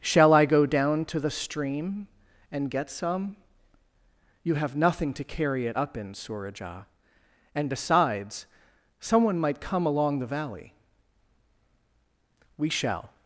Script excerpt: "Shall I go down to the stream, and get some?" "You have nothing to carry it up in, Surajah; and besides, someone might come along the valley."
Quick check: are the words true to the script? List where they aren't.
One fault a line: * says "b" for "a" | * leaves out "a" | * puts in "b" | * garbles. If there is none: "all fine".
* puts in "We shall"